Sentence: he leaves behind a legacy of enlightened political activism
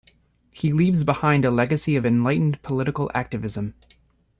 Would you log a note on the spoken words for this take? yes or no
no